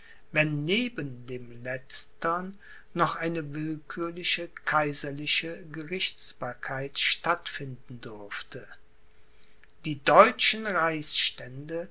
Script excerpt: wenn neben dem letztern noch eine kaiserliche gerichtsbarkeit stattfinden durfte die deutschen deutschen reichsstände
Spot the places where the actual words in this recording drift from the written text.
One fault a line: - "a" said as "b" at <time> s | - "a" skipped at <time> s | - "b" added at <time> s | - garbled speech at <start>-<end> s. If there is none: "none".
- "willkürliche" added at 3.5 s
- "deutschen" skipped at 10.7 s